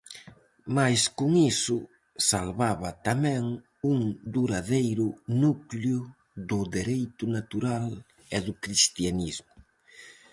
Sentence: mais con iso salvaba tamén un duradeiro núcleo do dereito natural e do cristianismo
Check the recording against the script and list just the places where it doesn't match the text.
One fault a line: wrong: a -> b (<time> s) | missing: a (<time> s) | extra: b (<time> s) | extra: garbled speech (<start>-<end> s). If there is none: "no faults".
no faults